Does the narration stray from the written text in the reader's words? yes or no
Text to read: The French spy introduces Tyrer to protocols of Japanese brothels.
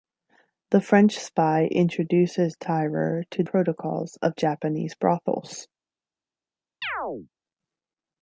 no